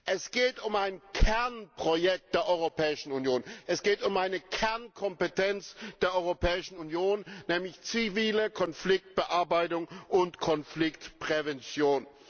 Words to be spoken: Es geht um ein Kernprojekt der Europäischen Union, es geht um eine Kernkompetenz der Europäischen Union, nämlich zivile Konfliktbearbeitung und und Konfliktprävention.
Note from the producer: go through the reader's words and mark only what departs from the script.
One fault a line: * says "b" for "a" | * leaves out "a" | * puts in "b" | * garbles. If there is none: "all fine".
* leaves out "und"